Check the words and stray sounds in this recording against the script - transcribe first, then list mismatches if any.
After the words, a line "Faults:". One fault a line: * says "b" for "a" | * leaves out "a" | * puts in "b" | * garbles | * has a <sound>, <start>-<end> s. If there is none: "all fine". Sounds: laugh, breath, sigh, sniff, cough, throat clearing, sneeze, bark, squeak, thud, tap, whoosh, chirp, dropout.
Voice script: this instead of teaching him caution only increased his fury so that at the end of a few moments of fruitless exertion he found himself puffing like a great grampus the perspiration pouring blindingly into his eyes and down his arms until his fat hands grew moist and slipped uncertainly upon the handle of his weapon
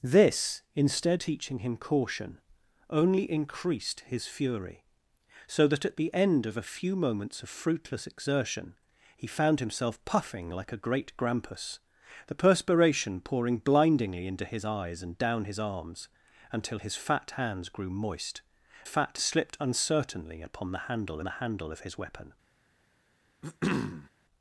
this instead teaching him caution only increased his fury so that at the end of a few moments of fruitless exertion he found himself puffing like a great grampus the perspiration pouring blindingly into his eyes and down his arms until his fat hands grew moist fat slipped uncertainly upon the handle the handle of his weapon
Faults:
* leaves out "of"
* says "fat" for "and"
* puts in "the handle"
* has a throat clearing, 23.4-24.1 s